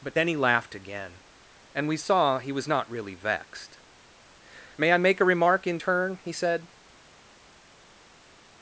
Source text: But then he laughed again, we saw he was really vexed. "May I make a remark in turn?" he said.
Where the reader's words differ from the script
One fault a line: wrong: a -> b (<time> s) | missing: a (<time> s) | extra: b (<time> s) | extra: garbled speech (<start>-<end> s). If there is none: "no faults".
extra: and (1.7 s)
extra: not (2.7 s)